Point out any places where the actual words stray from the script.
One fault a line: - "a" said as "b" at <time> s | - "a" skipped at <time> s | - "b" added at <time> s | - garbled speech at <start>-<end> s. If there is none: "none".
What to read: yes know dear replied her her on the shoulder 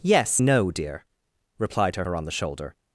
none